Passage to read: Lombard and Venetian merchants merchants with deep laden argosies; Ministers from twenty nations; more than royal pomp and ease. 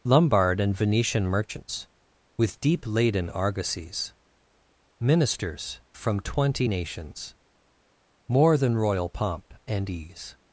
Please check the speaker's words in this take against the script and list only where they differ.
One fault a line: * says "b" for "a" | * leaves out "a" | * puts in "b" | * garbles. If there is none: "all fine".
* leaves out "merchants"